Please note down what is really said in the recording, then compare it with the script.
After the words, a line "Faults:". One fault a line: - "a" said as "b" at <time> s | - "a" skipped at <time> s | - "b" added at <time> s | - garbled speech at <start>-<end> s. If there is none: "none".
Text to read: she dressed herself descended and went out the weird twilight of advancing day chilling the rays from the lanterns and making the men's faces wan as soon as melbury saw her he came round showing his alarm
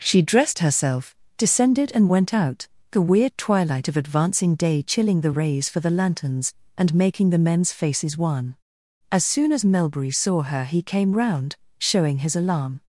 she dressed herself descended and went out the weird twilight of advancing day chilling the rays for the lanterns and making the men's faces wan as soon as melbury saw her he came round showing his alarm
Faults:
- "from" said as "for" at 5.7 s